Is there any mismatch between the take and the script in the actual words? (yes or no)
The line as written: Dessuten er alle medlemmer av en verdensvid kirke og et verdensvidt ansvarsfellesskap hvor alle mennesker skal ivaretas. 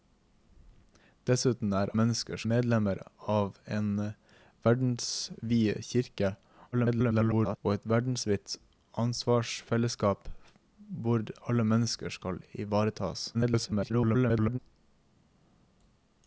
yes